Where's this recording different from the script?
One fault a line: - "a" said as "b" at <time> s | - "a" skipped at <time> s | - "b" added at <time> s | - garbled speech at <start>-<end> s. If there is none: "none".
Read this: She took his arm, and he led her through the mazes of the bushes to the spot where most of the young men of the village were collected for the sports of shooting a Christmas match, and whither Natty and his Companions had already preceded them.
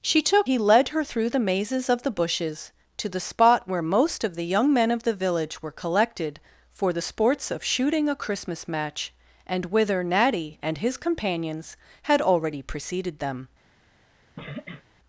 - "his arm and" skipped at 0.5 s